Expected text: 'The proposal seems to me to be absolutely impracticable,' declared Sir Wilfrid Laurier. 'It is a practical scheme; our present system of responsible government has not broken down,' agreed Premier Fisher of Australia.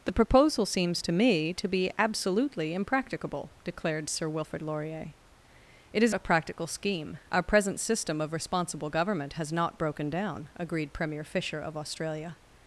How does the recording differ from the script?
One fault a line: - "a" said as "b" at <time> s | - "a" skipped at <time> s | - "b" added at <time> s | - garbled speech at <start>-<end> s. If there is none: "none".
none